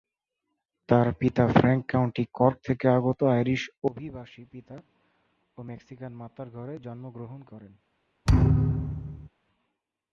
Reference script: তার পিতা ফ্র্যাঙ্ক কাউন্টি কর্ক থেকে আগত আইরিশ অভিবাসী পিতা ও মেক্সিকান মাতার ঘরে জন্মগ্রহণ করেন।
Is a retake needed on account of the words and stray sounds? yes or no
yes